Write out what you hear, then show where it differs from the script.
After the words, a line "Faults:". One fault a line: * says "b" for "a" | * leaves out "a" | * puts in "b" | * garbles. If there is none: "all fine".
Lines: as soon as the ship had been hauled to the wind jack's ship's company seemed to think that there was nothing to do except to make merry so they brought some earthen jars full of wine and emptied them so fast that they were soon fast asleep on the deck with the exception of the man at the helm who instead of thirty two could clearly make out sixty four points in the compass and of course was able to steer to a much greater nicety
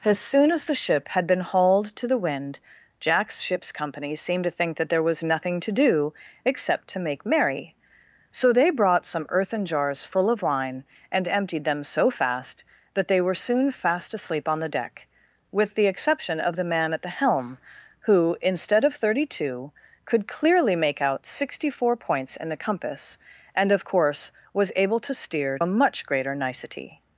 as soon as the ship had been hauled to the wind jack's ship's company seemed to think that there was nothing to do except to make merry so they brought some earthen jars full of wine and emptied them so fast that they were soon fast asleep on the deck with the exception of the man at the helm who instead of thirty two could clearly make out sixty four points in the compass and of course was able to steer a much greater nicety
Faults:
* leaves out "to"